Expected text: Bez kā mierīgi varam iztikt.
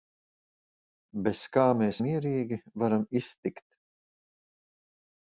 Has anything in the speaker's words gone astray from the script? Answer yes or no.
yes